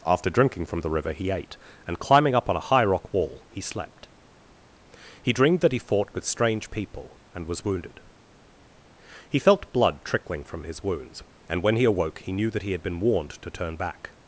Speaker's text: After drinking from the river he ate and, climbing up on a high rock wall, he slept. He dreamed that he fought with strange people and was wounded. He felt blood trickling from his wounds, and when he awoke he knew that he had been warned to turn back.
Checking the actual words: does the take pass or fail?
pass